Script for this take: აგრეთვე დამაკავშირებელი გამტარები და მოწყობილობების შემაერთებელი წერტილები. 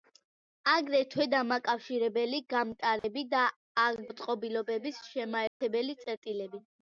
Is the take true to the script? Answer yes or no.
yes